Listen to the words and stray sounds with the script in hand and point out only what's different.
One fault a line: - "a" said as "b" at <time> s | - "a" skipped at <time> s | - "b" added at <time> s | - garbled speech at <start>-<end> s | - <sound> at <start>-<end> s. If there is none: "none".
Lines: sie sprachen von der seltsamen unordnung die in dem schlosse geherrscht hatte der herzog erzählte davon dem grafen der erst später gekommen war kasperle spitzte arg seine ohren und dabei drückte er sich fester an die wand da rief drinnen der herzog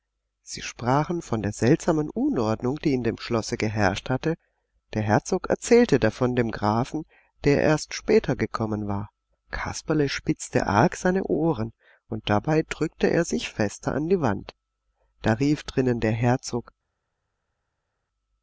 none